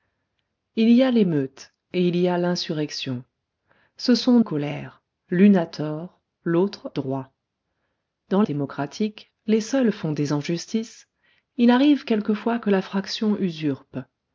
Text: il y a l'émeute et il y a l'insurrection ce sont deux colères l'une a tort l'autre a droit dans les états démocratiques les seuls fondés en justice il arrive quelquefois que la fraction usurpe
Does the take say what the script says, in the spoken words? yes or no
no